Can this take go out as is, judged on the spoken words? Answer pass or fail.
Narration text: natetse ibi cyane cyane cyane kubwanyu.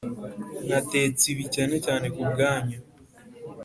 fail